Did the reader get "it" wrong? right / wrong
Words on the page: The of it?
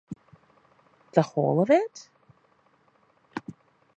right